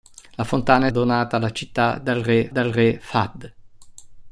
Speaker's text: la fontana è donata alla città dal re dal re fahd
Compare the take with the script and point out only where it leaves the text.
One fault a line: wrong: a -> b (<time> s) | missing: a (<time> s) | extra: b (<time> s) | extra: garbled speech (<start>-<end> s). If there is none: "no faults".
no faults